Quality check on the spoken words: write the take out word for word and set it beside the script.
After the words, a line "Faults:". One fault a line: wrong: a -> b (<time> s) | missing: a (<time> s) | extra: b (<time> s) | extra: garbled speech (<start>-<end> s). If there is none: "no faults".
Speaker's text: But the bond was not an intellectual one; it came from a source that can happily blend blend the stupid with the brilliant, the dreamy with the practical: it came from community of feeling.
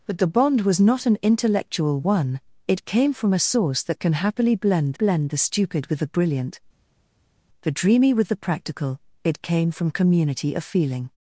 But the bond was not an intellectual one; it came from a source that can happily blend blend the stupid with the brilliant, the dreamy with the practical: it came from community of feeling.
Faults:
no faults